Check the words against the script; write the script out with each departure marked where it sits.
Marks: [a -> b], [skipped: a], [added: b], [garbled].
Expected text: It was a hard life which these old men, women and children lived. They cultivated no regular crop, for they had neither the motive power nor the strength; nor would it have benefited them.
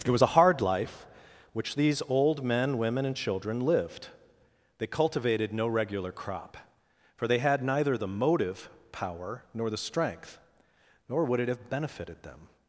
It was a hard life which these old men, women and children lived. They cultivated no regular crop, for they had neither the motive power nor the strength; nor would it have benefited them.